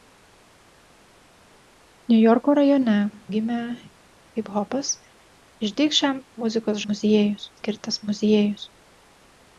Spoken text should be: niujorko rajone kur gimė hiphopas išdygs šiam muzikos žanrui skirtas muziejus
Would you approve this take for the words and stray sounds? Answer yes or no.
no